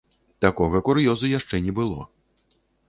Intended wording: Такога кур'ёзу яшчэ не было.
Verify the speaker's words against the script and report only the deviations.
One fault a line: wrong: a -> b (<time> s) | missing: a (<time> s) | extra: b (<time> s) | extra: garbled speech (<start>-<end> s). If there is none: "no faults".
no faults